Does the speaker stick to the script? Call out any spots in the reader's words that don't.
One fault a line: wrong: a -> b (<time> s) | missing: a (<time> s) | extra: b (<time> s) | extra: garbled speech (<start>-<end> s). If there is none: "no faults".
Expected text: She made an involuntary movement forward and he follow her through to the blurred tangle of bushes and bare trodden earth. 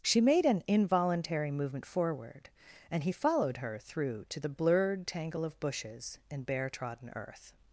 wrong: follow -> followed (3.1 s)